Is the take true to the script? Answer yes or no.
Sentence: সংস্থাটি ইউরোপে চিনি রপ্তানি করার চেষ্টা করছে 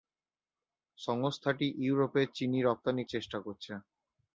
no